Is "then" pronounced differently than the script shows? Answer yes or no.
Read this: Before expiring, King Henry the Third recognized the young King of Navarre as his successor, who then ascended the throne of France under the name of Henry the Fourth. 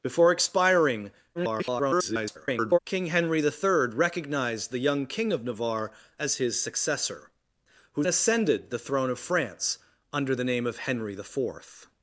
yes